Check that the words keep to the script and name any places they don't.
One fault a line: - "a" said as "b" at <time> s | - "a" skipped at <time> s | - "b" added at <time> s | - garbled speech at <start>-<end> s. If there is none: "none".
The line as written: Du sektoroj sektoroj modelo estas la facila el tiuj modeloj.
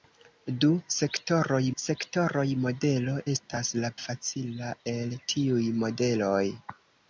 none